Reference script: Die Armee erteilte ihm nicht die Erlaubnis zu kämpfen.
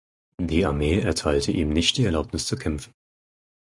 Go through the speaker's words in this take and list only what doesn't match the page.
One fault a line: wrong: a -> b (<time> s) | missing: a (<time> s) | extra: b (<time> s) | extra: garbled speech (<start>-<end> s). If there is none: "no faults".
no faults